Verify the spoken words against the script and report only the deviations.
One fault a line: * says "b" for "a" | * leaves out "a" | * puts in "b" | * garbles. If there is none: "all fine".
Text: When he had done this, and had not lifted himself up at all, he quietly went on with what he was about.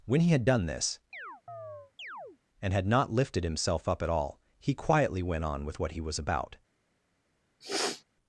all fine